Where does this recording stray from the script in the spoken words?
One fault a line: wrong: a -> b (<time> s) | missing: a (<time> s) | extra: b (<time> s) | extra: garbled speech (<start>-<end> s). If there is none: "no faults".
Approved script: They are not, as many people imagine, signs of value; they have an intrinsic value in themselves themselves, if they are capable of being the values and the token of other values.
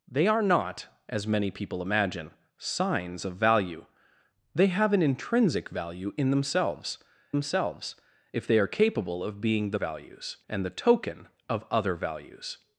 no faults